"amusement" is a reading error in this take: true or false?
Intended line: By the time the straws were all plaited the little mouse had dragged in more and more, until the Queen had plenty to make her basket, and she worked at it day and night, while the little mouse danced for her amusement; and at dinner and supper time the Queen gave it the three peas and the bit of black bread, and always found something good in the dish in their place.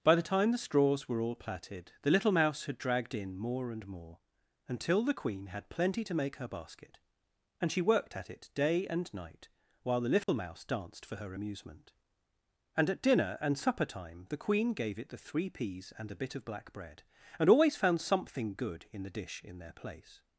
false